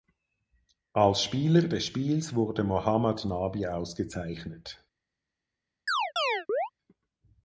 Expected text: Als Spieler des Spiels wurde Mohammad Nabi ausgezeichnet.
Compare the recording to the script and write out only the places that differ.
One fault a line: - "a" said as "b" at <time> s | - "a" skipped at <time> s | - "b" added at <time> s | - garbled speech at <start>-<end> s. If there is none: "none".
none